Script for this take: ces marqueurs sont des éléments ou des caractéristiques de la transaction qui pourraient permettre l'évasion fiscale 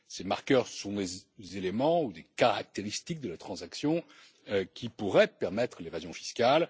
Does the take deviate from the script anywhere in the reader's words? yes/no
no